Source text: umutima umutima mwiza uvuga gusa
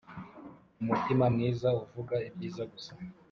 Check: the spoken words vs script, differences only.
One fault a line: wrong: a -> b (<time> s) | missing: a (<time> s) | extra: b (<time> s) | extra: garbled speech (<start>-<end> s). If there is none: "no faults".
missing: umutima (1.2 s)
extra: ibyiza (2.3 s)